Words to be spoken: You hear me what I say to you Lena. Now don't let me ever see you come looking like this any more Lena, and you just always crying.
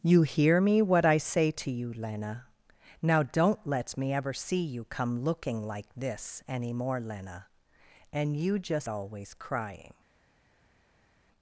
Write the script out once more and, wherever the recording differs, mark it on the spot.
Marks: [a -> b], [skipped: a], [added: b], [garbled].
You hear me what I say to you Lena. Now don't let me ever see you come looking like this any more Lena, and you just always crying.